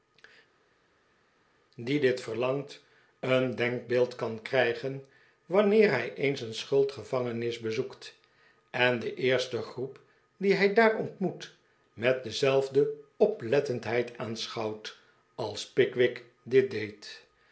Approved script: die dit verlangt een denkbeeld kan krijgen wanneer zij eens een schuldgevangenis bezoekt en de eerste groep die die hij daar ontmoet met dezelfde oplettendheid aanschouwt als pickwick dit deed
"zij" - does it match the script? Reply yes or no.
no